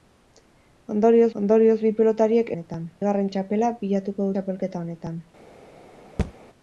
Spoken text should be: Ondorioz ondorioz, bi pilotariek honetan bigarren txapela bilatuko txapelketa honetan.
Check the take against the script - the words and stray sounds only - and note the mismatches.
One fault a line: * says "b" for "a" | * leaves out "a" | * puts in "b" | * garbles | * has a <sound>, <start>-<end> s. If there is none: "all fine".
* has a thud, 6.2-6.3 s